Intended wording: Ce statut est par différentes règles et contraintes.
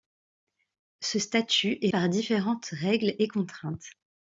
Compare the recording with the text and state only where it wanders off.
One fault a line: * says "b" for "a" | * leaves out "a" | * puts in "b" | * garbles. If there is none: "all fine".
all fine